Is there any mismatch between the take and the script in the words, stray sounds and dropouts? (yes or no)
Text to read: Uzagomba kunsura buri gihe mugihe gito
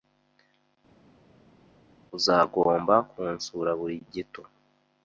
yes